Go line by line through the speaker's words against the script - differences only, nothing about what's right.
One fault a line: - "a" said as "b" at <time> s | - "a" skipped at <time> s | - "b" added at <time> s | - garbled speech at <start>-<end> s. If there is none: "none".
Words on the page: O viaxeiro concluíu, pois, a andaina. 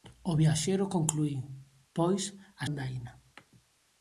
none